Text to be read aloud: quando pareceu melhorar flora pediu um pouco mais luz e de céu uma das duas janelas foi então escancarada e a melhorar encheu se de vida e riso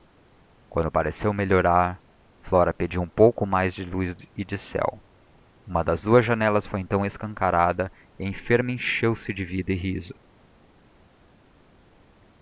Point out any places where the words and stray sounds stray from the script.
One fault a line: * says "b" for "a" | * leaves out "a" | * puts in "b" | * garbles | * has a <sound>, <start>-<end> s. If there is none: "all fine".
* puts in "de"
* says "enferma" for "melhorar"